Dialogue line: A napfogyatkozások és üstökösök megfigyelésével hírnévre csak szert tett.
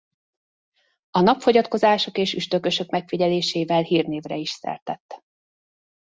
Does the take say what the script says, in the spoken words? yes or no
no